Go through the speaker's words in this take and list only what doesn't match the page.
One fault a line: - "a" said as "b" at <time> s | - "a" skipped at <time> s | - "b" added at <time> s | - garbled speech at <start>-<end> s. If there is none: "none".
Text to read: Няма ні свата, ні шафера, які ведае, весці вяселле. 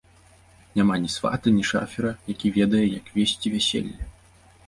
- "як" added at 2.9 s